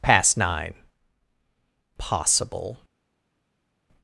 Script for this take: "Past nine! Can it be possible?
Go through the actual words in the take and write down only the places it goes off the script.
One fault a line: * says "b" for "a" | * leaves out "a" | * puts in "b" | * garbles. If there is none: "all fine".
* leaves out "Can it be"